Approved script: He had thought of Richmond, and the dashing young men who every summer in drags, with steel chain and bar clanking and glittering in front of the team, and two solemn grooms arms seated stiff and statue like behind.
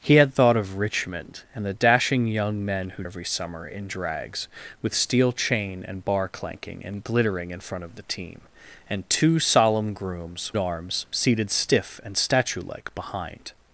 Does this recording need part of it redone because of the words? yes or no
no